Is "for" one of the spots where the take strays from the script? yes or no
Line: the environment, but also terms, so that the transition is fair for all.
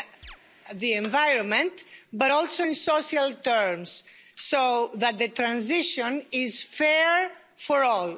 no